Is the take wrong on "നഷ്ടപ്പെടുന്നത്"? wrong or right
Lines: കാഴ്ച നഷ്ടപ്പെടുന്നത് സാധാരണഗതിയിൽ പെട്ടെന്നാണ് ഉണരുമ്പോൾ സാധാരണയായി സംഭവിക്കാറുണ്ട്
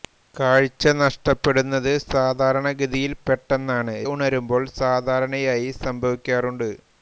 right